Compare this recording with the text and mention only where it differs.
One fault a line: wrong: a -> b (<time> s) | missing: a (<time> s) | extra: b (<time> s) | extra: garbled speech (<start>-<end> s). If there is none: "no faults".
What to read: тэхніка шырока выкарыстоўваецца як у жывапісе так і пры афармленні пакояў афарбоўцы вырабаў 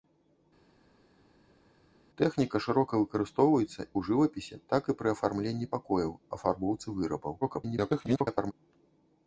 missing: як (3.8 s)
extra: garbled speech (7.4-8.5 s)